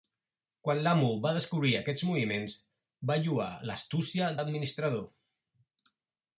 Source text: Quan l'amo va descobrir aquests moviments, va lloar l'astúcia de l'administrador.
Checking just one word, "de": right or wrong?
wrong